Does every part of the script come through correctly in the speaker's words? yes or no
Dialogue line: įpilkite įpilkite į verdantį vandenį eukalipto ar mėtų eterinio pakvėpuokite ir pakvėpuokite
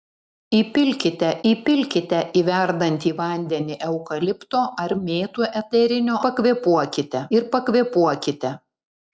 yes